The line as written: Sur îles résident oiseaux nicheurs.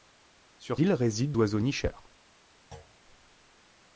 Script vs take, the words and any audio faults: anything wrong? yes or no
yes